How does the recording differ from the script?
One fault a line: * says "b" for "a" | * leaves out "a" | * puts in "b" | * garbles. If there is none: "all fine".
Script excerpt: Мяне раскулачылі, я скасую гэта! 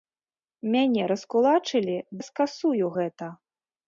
all fine